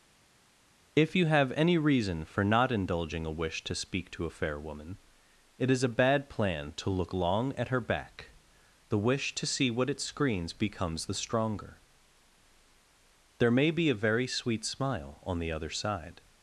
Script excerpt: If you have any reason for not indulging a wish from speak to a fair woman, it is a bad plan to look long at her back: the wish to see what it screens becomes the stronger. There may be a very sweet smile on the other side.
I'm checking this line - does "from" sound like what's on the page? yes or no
no